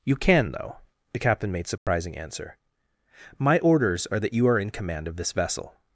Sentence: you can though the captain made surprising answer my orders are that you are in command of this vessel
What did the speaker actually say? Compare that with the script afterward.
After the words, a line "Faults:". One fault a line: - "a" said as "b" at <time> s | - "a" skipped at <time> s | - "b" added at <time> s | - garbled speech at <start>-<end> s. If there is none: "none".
you can though the captain made surprising answer my orders are that you are in command of this vessel
Faults:
none